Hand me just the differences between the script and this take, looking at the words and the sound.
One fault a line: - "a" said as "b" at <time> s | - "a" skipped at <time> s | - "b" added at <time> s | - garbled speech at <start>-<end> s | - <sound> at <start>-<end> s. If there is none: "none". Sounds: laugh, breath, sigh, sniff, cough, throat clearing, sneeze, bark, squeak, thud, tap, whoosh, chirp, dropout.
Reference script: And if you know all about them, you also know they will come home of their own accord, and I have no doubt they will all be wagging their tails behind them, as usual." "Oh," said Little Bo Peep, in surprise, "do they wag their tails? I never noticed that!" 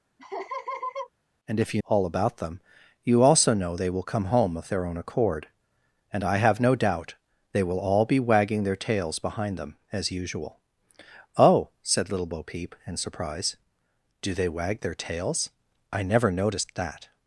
- laugh at 0.2-1.1 s
- "know" skipped at 1.8 s